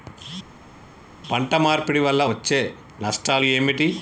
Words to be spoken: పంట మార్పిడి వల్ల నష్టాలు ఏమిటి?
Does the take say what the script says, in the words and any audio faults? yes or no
no